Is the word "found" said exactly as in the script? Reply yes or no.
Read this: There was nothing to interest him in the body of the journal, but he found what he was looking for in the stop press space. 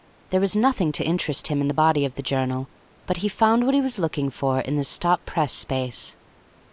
yes